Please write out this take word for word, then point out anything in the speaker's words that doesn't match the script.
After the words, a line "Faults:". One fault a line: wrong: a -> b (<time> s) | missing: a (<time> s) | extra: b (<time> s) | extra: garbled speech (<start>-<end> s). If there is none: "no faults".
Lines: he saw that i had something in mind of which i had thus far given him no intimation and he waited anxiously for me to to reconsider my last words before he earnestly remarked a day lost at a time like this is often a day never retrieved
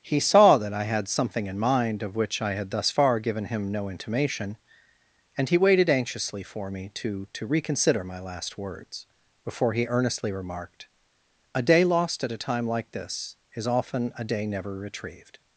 he saw that i had something in mind of which i had thus far given him no intimation and he waited anxiously for me to to reconsider my last words before he earnestly remarked a day lost at a time like this is often a day never retrieved
Faults:
no faults